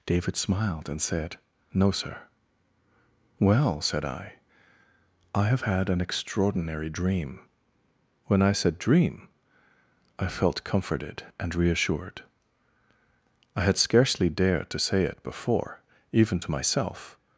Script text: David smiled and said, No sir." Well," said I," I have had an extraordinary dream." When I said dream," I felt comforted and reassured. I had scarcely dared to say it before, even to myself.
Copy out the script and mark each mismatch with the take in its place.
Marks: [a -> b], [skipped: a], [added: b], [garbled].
David smiled and said, No sir." Well," said I," I have had an extraordinary dream." When I said dream," I felt comforted and reassured. I had scarcely dared to say it before, even to myself.